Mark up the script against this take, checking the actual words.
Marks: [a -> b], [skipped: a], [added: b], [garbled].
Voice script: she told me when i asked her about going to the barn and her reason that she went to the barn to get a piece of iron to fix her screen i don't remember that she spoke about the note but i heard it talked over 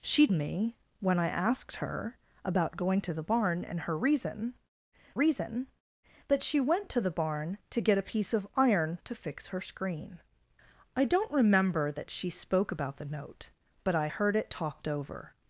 she [skipped: told] me when i asked her about going to the barn and her reason [added: reason] that she went to the barn to get a piece of iron to fix her screen i don't remember that she spoke about the note but i heard it talked over